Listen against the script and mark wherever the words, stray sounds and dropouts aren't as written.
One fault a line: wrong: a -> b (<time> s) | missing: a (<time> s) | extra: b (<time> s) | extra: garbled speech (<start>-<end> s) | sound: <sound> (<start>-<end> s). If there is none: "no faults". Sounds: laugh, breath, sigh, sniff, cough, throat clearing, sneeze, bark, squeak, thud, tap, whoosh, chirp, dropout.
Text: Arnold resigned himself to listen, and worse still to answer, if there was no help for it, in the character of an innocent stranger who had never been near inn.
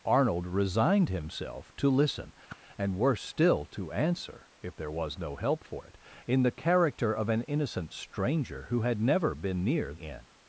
sound: whoosh (2.5-2.6 s)